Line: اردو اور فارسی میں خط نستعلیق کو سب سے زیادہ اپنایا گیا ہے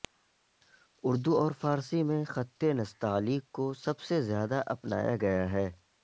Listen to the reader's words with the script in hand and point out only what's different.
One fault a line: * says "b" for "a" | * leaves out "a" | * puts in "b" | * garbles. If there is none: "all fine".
all fine